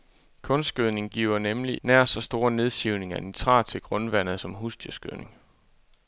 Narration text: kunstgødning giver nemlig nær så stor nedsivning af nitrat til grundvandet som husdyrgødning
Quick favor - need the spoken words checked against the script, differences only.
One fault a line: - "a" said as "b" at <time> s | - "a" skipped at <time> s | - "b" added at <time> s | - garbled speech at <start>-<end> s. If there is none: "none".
none